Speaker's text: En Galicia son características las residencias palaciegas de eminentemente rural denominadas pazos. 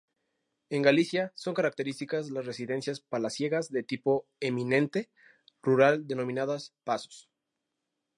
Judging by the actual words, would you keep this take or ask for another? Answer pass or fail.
fail